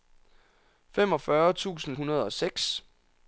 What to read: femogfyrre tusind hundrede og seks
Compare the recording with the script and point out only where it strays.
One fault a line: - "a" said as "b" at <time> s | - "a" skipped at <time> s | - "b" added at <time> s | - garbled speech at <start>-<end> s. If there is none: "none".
none